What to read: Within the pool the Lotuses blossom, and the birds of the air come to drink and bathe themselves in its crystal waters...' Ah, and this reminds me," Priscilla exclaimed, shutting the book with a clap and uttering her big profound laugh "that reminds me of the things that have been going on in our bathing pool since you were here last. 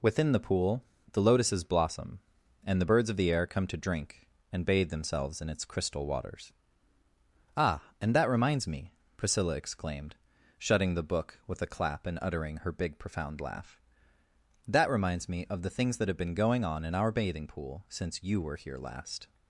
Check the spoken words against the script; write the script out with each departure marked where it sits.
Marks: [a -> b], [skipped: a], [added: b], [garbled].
Within the pool the Lotuses blossom, and the birds of the air come to drink and bathe themselves in its crystal waters...' Ah, and [this -> that] reminds me," Priscilla exclaimed, shutting the book with a clap and uttering her big profound laugh "that reminds me of the things that have been going on in our bathing pool since you were here last.